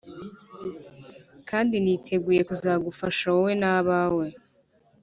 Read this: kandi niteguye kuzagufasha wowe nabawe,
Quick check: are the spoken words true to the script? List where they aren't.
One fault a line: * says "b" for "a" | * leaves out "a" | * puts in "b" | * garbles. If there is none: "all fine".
all fine